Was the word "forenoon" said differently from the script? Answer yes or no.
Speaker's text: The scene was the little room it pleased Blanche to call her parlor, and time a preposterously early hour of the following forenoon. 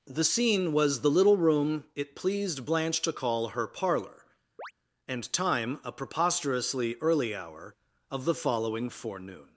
no